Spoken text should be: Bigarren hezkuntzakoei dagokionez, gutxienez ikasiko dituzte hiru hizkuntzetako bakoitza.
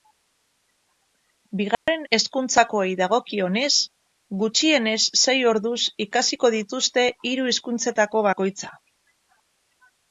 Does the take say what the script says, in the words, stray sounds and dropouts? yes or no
no